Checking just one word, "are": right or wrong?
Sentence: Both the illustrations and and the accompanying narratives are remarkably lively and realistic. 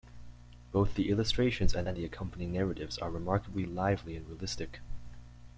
right